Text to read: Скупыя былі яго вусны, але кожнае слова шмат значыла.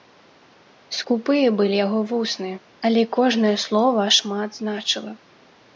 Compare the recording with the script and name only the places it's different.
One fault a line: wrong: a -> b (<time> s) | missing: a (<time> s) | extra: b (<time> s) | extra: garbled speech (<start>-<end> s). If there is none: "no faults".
no faults